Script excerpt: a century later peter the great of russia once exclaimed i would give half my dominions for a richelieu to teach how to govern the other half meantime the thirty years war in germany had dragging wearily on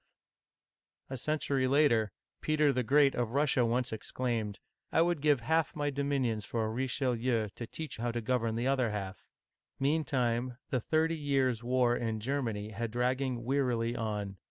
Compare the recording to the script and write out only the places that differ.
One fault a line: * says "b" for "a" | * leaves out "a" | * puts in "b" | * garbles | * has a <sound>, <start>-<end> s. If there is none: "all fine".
all fine